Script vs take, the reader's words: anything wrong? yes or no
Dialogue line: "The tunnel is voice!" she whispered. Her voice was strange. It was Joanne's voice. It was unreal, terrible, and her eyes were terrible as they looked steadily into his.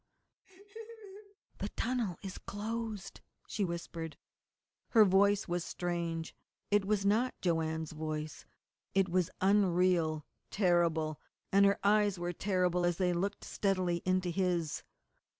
yes